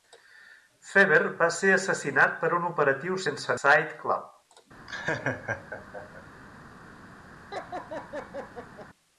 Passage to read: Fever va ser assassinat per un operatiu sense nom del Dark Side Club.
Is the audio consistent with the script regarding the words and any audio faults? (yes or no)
no